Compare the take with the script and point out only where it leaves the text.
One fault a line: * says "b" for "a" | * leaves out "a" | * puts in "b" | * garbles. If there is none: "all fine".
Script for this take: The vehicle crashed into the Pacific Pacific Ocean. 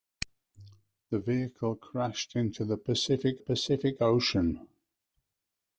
all fine